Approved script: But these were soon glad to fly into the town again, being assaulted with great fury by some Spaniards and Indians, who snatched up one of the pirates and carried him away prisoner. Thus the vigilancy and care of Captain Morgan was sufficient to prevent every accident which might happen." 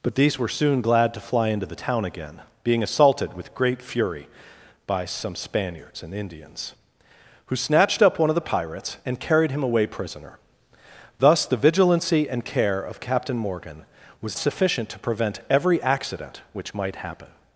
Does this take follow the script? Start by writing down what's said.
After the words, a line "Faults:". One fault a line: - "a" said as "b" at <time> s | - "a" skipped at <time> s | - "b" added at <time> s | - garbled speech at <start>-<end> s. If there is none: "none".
But these were soon glad to fly into the town again, being assaulted with great fury by some Spaniards and Indians, who snatched up one of the pirates and carried him away prisoner. Thus the vigilancy and care of Captain Morgan was sufficient to prevent every accident which might happen."
Faults:
none